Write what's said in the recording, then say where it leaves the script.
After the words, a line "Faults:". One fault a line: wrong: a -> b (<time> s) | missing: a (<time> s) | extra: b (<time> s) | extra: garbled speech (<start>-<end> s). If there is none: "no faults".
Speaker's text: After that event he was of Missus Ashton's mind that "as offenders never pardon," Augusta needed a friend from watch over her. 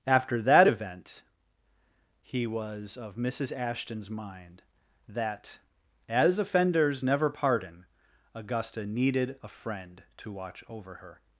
After that event he was of Missus Ashton's mind that "as offenders never pardon," Augusta needed a friend to watch over her.
Faults:
wrong: from -> to (10.2 s)